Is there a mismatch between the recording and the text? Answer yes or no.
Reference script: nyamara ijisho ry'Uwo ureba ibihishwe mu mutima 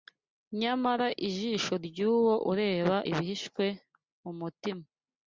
no